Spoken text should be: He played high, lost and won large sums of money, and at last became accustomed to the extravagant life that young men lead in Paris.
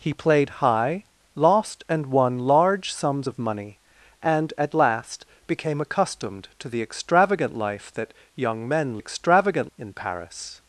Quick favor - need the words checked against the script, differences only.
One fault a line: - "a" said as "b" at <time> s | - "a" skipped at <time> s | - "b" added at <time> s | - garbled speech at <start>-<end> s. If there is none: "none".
- "lead" said as "extravagant" at 9.0 s